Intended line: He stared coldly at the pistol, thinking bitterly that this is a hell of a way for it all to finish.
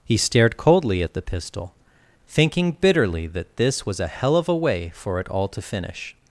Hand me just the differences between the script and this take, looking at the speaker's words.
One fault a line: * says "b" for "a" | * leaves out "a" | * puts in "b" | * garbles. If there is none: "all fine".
* says "was" for "is"